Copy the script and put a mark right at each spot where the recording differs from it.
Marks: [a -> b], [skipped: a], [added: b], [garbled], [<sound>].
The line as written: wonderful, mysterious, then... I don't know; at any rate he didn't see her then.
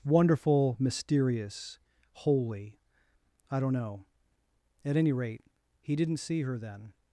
wonderful, mysterious, [then... -> holy] I don't know; at any rate he didn't see her then.